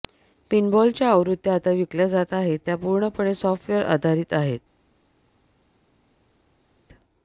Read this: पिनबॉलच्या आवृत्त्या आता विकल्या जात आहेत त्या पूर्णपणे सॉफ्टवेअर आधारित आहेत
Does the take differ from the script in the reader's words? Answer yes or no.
no